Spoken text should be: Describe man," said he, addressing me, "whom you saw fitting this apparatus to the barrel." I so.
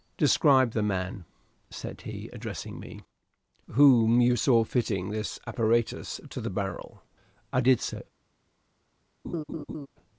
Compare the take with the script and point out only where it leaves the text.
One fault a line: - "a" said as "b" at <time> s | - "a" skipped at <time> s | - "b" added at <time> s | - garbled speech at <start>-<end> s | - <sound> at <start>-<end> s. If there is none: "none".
- "the" added at 0.7 s
- "did" added at 7.6 s
- laugh at 9.2-9.9 s